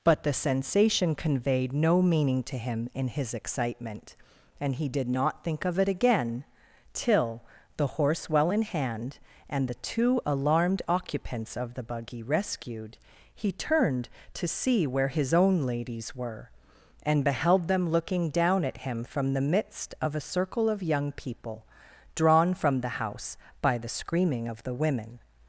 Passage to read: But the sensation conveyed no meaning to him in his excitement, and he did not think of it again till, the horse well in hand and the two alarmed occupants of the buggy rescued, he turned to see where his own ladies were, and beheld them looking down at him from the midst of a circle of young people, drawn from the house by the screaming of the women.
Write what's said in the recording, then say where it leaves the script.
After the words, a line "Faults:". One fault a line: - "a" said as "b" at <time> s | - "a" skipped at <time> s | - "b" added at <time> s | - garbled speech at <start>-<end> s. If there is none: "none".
But the sensation conveyed no meaning to him in his excitement, and he did not think of it again till, the horse well in hand and the two alarmed occupants of the buggy rescued, he turned to see where his own ladies were, and beheld them looking down at him from the midst of a circle of young people, drawn from the house by the screaming of the women.
Faults:
none